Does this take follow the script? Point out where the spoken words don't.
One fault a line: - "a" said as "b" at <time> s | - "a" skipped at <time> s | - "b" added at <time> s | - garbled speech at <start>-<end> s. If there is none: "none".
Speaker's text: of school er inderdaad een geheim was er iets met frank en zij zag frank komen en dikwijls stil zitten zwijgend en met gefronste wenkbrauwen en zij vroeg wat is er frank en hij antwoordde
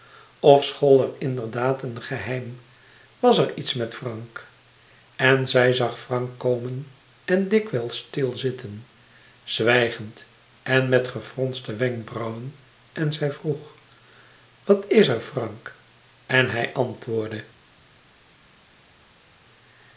none